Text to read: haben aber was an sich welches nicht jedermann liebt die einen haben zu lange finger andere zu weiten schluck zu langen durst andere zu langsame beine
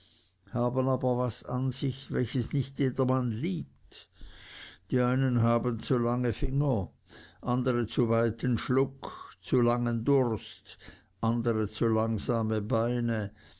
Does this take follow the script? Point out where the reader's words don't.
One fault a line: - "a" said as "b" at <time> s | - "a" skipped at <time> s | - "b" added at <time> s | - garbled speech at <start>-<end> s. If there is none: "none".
none